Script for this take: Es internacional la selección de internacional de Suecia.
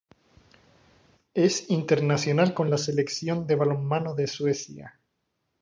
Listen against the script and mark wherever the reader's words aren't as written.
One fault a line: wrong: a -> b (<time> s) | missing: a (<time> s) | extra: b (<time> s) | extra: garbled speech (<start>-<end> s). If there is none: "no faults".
extra: con (2.5 s)
wrong: internacional -> balonmano (3.6 s)